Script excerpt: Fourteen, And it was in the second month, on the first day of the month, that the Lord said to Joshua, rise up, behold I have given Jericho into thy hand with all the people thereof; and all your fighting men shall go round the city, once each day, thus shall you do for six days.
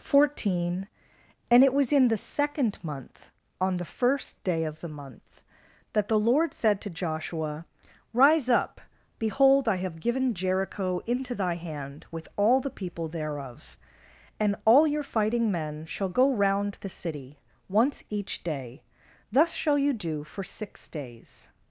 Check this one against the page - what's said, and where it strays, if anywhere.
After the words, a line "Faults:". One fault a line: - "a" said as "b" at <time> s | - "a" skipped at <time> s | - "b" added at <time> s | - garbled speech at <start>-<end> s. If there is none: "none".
Fourteen, And it was in the second month, on the first day of the month, that the Lord said to Joshua, rise up, behold I have given Jericho into thy hand with all the people thereof; and all your fighting men shall go round the city, once each day, thus shall you do for six days.
Faults:
none